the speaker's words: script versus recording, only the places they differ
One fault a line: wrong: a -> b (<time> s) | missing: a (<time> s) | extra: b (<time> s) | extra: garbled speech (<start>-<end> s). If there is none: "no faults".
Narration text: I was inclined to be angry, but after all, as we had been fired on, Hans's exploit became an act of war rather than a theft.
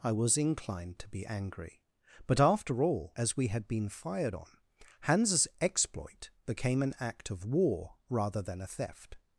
no faults